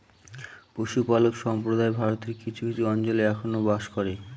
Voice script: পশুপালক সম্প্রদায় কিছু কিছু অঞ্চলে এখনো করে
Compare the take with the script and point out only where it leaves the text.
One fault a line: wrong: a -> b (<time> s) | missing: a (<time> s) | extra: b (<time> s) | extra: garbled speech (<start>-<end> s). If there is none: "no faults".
extra: ভারতের (2.0 s)
extra: বাস (3.7 s)